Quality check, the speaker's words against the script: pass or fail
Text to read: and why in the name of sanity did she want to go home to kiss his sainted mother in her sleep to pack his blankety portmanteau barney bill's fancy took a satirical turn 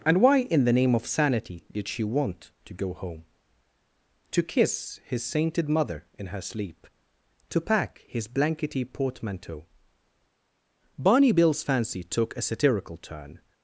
pass